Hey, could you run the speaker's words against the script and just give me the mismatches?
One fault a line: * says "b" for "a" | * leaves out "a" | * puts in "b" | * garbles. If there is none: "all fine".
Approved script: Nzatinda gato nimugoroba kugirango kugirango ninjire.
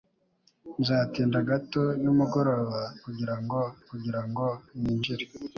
all fine